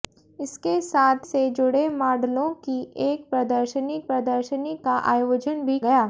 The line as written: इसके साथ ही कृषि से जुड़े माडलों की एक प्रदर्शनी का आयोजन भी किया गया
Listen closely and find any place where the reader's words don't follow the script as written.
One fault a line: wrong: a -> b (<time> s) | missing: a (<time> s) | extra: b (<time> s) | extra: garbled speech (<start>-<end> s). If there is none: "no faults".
missing: ही कृषि (1.3 s)
extra: प्रदर्शनी (4.1 s)
missing: किया (5.8 s)